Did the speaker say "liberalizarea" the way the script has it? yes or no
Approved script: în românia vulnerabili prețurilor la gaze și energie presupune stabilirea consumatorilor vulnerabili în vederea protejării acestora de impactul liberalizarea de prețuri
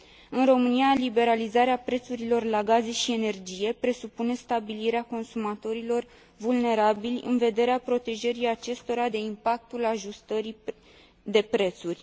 no